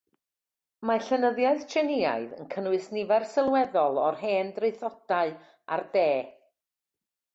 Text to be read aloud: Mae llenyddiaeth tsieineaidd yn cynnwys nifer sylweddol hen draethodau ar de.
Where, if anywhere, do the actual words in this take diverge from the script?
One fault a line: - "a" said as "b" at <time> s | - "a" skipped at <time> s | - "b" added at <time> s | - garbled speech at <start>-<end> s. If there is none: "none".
- "o'r" added at 4.1 s